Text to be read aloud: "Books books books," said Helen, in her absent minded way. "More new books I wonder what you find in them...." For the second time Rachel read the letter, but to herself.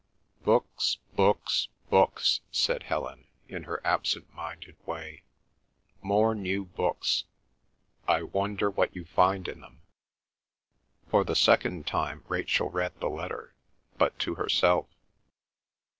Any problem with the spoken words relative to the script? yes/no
no